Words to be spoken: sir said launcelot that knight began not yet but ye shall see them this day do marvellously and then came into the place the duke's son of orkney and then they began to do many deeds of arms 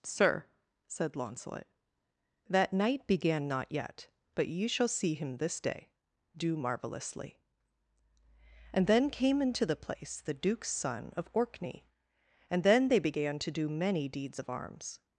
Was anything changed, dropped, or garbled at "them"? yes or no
yes